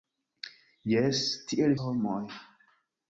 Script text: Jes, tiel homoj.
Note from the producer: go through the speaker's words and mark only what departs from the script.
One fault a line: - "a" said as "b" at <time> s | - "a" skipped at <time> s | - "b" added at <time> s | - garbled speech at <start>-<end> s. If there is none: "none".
none